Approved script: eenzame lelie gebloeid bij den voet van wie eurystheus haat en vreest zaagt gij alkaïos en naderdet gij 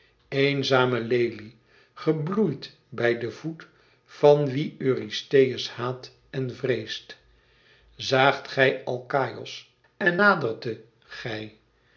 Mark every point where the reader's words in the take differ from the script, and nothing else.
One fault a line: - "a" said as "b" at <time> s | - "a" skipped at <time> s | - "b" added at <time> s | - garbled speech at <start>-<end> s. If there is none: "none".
none